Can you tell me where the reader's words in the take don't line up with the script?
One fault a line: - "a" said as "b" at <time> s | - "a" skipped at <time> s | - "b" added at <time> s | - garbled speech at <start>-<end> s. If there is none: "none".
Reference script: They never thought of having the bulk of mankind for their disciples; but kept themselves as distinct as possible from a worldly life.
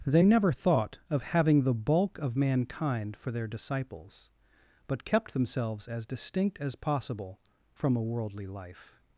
none